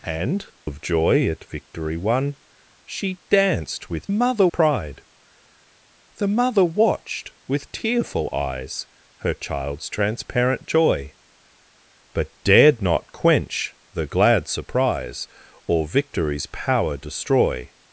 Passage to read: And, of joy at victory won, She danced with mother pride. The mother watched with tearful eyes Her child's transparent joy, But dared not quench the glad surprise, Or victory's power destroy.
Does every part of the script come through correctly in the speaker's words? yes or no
yes